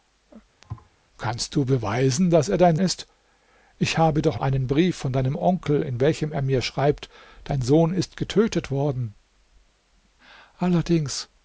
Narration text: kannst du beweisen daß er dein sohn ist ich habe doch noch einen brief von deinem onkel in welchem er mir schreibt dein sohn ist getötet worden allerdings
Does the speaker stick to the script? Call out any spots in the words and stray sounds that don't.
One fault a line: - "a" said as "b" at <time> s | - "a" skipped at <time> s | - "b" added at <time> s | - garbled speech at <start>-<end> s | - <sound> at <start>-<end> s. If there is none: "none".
- thud at 0.6-0.9 s
- "sohn" skipped at 2.8 s
- "noch" skipped at 4.4 s